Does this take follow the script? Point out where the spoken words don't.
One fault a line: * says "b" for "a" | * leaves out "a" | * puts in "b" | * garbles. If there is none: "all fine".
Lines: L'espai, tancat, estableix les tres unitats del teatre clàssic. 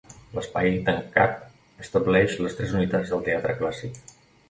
all fine